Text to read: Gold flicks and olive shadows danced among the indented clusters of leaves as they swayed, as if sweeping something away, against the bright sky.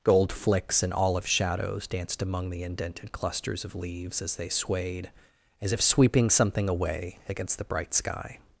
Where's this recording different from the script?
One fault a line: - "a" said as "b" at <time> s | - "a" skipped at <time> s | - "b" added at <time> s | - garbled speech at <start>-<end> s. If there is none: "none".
none